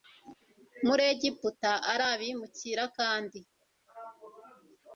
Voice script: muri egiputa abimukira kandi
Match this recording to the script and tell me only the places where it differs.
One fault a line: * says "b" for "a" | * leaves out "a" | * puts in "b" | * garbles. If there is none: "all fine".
* puts in "ari"